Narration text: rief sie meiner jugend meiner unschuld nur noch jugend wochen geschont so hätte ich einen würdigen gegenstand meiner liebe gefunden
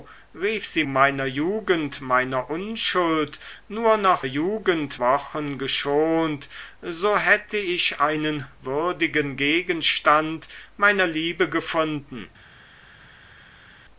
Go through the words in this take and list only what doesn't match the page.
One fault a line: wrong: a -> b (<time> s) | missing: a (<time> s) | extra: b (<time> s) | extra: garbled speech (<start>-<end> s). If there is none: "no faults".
no faults